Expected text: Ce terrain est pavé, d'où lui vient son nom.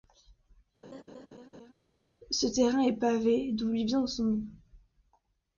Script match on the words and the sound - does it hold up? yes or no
no